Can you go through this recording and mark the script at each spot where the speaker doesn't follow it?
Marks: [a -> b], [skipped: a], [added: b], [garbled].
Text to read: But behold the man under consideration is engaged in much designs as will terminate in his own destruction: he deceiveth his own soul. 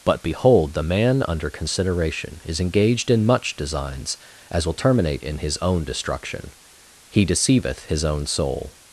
But behold the man under consideration is engaged in much designs as will terminate in his own destruction: he deceiveth his own soul.